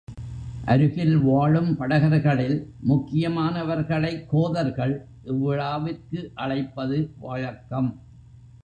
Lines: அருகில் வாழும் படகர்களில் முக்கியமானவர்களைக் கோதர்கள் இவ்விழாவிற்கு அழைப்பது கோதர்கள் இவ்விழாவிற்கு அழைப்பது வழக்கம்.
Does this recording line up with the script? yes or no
no